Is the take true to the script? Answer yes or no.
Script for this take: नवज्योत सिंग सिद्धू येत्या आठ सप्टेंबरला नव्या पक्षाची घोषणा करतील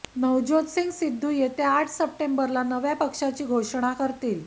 yes